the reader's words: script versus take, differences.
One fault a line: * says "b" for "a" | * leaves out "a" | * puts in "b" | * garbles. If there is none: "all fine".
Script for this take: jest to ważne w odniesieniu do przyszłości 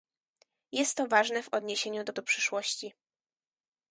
* puts in "do"